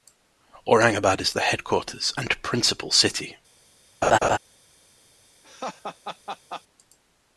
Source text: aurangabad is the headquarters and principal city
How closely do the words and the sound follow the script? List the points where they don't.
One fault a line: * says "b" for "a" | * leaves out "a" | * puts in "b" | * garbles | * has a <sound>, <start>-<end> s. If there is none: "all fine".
* has a laugh, 4.0-4.4 s
* has a laugh, 5.4-6.6 s